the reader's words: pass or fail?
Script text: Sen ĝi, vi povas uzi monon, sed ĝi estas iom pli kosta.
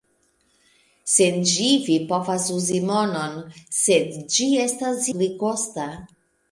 fail